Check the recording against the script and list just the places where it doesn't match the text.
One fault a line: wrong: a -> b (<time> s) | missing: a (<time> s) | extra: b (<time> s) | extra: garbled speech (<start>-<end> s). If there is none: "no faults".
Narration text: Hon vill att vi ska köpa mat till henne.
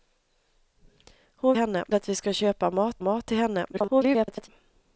wrong: vill -> henne (1.6 s)
extra: mat (3.0 s)
extra: garbled speech (3.7-4.5 s)